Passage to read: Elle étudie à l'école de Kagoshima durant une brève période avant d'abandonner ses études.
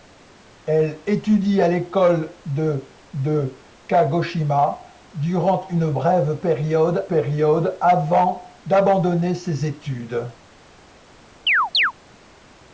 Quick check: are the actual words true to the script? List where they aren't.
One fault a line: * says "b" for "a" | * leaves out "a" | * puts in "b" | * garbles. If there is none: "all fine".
* puts in "de"
* puts in "période"